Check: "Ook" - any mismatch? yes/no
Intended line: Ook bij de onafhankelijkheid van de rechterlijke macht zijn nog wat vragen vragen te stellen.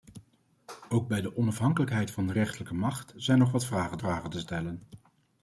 no